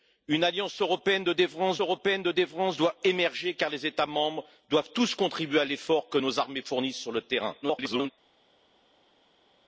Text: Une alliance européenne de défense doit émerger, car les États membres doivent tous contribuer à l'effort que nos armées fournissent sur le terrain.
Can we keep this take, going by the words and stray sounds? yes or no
no